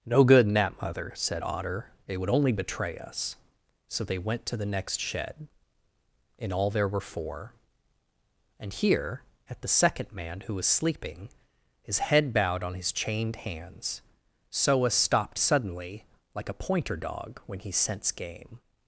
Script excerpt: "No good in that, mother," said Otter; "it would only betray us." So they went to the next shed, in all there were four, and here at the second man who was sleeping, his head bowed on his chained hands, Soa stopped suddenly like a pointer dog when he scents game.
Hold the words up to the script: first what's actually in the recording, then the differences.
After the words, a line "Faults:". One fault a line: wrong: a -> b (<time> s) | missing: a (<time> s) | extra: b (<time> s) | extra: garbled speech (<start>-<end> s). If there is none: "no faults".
"No good in that, mother," said Otter; "it would only betray us." So they went to the next shed, in all there were four, and here at the second man who was sleeping, his head bowed on his chained hands, Soa stopped suddenly like a pointer dog when he scents game.
Faults:
no faults